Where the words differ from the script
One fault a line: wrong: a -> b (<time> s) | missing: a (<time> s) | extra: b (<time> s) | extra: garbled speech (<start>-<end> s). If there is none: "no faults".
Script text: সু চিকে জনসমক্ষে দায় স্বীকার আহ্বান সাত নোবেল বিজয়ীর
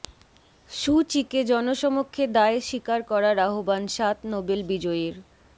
extra: করার (3.1 s)